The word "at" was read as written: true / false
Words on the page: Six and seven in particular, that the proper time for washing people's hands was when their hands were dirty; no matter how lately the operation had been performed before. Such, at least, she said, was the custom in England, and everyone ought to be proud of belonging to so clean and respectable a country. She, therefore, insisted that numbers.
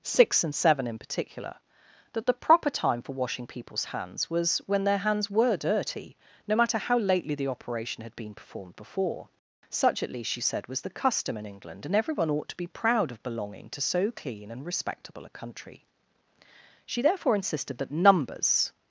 true